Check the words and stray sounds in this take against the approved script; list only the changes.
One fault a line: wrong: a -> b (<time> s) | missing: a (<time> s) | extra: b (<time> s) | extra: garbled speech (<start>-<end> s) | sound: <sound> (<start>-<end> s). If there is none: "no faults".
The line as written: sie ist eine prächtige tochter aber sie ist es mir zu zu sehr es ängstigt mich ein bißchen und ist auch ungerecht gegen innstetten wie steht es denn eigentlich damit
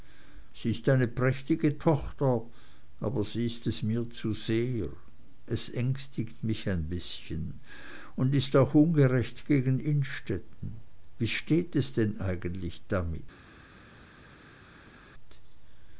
missing: zu (4.3 s)